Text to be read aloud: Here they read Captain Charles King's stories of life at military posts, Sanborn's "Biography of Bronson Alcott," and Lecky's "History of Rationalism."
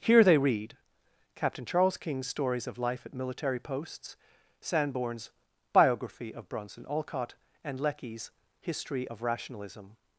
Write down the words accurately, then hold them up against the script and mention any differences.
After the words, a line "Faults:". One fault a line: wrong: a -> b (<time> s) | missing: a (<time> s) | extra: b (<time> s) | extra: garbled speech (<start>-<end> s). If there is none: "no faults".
Here they read Captain Charles King's stories of life at military posts, Sanborn's "Biography of Bronson Alcott," and Lecky's "History of Rationalism."
Faults:
no faults